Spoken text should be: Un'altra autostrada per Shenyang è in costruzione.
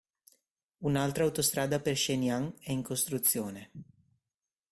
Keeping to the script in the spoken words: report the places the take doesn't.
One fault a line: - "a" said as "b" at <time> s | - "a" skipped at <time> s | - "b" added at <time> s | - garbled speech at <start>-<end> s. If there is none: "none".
none